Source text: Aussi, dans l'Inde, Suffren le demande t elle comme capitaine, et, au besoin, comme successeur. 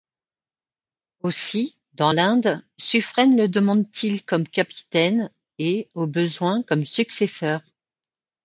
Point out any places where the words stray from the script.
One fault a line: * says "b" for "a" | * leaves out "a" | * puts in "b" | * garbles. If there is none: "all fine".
* says "il" for "elle"